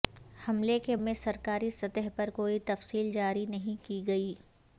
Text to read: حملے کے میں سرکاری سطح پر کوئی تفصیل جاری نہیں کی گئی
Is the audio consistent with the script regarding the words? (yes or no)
yes